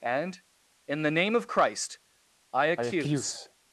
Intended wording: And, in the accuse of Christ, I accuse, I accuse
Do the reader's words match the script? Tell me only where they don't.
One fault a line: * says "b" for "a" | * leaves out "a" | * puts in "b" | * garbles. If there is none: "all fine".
* says "name" for "accuse"